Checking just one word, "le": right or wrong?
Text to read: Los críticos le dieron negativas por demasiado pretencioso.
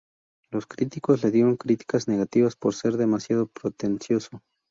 right